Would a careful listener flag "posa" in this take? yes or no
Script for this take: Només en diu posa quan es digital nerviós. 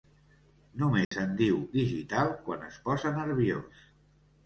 yes